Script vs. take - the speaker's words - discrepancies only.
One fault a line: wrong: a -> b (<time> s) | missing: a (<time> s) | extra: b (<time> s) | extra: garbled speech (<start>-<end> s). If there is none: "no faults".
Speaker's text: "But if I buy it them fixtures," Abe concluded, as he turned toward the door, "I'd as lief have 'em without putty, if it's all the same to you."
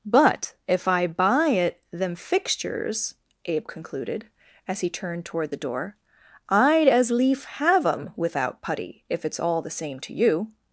no faults